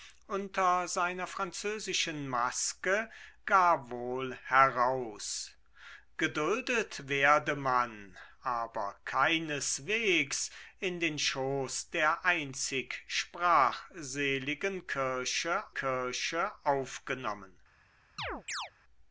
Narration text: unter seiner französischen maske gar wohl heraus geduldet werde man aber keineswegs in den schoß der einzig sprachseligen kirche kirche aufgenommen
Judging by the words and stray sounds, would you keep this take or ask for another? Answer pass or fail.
fail